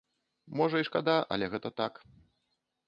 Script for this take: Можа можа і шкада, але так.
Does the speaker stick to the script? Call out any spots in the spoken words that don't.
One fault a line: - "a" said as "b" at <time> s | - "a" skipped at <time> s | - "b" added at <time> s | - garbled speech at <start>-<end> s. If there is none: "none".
- "можа" skipped at 0.8 s
- "гэта" added at 1.6 s